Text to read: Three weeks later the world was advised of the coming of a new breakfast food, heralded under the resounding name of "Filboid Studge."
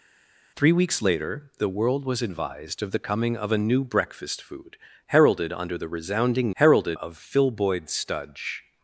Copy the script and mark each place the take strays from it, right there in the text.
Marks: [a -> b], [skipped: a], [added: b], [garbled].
Three weeks later the world was advised of the coming of a new breakfast food, heralded under the resounding [name -> heralded] of "Filboid Studge."